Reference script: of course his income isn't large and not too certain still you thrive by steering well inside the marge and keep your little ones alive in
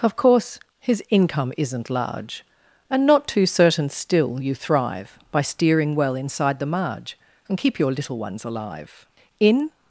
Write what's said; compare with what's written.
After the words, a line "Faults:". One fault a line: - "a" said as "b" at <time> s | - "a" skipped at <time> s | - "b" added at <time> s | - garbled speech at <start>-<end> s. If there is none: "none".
of course his income isn't large and not too certain still you thrive by steering well inside the marge and keep your little ones alive in
Faults:
none